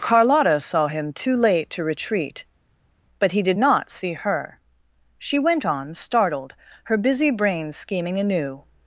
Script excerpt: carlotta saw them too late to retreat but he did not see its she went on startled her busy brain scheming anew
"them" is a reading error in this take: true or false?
true